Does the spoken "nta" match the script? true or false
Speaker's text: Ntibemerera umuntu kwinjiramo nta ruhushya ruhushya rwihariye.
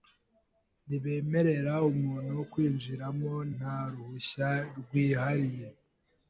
true